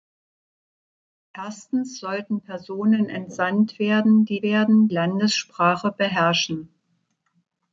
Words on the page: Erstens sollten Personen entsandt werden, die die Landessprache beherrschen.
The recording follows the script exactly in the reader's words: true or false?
false